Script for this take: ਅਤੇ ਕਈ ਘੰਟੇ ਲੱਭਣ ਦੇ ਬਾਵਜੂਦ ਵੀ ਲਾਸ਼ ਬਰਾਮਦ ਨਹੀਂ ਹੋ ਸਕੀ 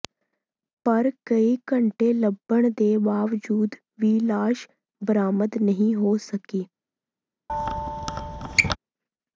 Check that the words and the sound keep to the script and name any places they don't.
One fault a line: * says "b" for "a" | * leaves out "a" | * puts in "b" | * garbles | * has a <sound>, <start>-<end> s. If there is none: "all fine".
* says "ਪਰ" for "ਅਤੇ"
* has a squeak, 7.5-8.8 s